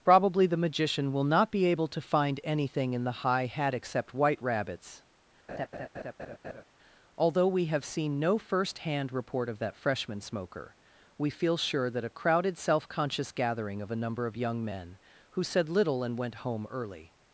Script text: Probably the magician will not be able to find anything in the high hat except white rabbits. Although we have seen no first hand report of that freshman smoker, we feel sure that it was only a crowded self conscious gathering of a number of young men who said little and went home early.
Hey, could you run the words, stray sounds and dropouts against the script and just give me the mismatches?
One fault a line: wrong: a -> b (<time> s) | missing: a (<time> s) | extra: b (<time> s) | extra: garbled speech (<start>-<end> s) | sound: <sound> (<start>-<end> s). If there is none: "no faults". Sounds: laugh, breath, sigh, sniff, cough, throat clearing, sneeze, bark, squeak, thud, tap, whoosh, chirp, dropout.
sound: laugh (5.5-6.6 s)
missing: it was only (12.0 s)